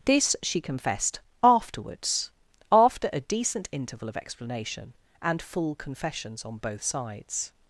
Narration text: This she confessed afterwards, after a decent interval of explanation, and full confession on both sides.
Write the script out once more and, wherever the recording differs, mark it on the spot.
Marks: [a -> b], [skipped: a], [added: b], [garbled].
This she confessed afterwards, after a decent interval of explanation, and full [confession -> confessions] on both sides.